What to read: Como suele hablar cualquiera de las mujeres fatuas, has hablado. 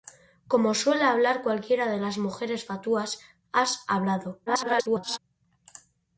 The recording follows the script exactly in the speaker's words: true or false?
false